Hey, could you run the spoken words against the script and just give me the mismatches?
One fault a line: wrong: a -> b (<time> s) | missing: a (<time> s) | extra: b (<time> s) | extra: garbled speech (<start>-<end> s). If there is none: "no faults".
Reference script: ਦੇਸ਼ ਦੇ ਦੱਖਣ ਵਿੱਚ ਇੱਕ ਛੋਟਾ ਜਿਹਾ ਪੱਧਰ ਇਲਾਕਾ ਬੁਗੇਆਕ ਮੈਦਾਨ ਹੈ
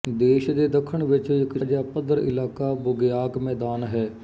missing: ਛੋਟਾ (1.6 s)